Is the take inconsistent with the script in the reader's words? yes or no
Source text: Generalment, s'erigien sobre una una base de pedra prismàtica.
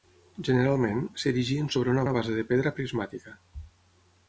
no